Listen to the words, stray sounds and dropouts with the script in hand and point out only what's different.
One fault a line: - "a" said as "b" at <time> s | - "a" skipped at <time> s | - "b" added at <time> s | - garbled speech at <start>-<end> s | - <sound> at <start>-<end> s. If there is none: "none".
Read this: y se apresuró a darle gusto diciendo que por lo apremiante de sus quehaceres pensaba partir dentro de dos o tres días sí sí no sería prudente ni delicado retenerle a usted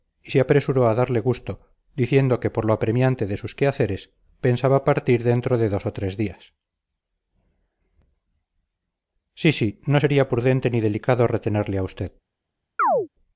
- chirp at 12.8-13.1 s